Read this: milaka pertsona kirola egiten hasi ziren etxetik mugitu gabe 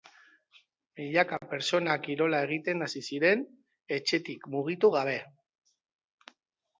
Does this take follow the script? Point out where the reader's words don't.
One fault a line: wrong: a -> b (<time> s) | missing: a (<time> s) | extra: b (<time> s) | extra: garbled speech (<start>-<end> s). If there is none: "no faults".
no faults